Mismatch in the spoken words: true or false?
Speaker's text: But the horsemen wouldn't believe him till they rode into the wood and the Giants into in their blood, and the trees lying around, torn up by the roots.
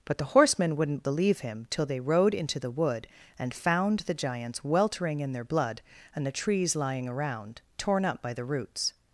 true